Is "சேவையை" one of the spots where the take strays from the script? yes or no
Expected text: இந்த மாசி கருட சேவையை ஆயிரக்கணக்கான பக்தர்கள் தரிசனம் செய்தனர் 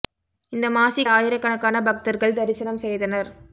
yes